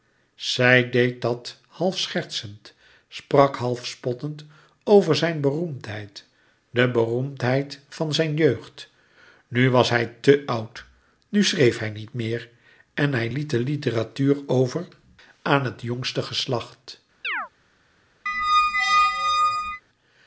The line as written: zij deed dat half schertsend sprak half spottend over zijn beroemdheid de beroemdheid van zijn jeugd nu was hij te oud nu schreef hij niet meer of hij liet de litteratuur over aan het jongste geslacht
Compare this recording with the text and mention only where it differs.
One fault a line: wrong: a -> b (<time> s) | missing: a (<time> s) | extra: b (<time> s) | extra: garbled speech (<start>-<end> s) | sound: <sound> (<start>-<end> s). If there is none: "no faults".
wrong: of -> en (12.9 s)
sound: chirp (17.2-17.5 s)
sound: squeak (18.3-19.8 s)